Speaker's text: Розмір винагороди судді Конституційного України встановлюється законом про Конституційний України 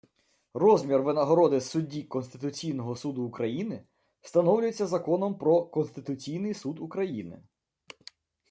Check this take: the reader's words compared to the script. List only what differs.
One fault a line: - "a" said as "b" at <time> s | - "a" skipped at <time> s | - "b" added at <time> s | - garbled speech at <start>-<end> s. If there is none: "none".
- "Суду" added at 2.9 s
- "Суд" added at 6.5 s